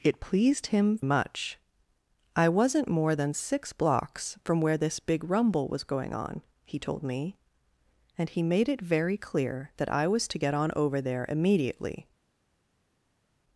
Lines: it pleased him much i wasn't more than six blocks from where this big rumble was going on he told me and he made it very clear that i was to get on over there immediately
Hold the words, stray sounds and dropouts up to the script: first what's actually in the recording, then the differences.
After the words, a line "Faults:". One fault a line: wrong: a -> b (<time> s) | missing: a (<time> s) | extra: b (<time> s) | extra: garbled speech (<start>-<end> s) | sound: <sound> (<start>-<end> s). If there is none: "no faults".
it pleased him much i wasn't more than six blocks from where this big rumble was going on he told me and he made it very clear that i was to get on over there immediately
Faults:
no faults